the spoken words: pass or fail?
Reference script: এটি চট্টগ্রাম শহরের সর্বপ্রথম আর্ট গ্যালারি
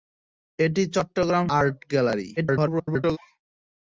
fail